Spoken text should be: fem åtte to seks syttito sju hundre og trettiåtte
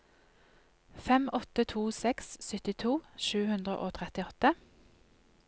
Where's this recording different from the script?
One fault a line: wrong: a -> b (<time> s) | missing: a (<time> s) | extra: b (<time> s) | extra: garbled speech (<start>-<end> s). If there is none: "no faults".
no faults